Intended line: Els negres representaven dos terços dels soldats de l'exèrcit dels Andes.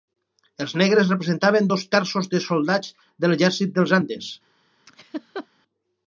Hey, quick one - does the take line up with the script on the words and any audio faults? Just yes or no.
no